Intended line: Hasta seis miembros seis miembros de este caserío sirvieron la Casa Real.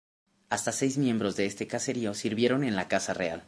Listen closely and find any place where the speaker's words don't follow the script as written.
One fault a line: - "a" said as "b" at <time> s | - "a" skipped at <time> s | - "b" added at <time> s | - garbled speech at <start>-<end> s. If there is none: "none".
- "seis miembros" skipped at 1.4 s
- "en" added at 2.6 s